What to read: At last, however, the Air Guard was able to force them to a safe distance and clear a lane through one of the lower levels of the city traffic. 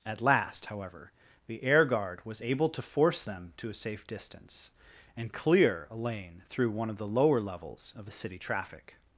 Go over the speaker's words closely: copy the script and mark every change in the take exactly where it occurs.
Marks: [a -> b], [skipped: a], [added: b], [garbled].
At last, however, the Air Guard was able to force them to a safe distance and clear a lane through one of the lower levels of the city traffic.